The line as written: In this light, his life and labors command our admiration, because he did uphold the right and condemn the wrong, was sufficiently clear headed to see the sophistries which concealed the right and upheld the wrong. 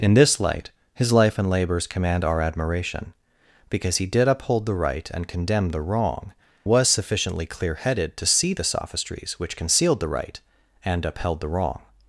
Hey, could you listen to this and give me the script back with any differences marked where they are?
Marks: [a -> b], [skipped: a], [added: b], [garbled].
In this light, his life and labors command our admiration, because he did uphold the right and condemn the wrong, was sufficiently clear headed to see the sophistries which concealed the right and upheld the wrong.